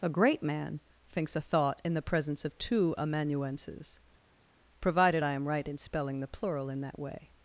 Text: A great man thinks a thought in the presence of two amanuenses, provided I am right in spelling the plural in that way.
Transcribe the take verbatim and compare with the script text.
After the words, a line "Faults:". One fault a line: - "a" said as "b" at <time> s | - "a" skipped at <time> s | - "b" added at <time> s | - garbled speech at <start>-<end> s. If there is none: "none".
A great man thinks a thought in the presence of two amanuenses, provided I am right in spelling the plural in that way.
Faults:
none